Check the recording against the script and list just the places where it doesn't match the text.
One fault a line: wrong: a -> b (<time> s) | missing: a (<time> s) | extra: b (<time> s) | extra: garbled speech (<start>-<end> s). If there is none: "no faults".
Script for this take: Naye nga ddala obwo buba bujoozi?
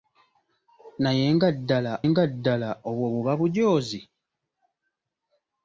extra: nga ddala (2.1 s)